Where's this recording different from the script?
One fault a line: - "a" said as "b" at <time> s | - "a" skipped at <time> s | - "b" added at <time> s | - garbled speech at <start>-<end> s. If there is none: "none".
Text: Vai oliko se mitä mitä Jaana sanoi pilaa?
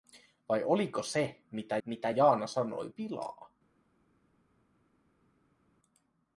none